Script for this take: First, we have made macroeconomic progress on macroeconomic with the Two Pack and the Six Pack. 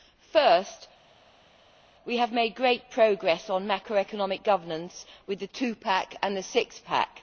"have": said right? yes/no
yes